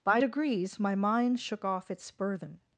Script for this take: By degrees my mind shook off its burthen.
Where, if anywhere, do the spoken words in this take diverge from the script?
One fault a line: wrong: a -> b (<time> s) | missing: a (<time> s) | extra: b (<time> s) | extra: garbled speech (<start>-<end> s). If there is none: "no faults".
no faults